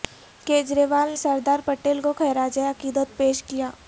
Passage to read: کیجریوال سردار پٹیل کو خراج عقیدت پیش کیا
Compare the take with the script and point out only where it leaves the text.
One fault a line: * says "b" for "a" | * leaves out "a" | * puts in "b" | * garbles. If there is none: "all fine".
all fine